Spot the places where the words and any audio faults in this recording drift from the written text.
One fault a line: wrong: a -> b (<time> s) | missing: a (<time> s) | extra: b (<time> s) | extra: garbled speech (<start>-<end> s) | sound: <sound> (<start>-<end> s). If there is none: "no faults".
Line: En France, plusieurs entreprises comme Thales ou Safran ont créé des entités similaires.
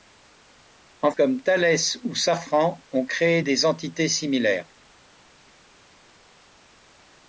missing: France plusieurs entreprises (1.1 s)